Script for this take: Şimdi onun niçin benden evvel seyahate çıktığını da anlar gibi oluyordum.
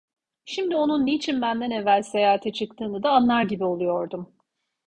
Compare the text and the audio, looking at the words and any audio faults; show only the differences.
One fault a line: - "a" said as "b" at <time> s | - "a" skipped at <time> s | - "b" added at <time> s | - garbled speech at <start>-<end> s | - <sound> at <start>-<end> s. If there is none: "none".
none